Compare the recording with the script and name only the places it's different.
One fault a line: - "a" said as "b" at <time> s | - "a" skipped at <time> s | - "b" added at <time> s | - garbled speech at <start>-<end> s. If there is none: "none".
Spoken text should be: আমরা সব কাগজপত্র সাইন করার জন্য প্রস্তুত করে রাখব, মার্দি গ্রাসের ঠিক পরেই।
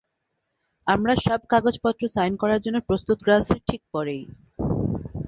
- "করে রাখব মার্দি" skipped at 3.2 s